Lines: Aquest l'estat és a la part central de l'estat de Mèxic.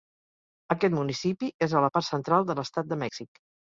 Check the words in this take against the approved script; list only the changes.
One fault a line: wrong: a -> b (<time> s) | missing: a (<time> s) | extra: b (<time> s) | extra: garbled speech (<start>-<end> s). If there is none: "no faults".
wrong: l'estat -> municipi (1.0 s)